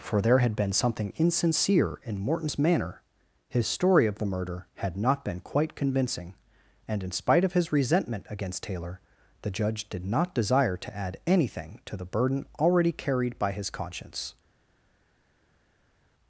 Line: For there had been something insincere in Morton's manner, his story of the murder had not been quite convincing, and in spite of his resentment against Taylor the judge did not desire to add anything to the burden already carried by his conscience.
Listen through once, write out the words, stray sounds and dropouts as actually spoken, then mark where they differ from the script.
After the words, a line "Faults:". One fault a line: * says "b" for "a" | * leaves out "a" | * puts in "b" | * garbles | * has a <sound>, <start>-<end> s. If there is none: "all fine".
For there had been something insincere in Morton's manner, his story of the murder had not been quite convincing, and in spite of his resentment against Taylor the judge did not desire to add anything to the burden already carried by his conscience.
Faults:
all fine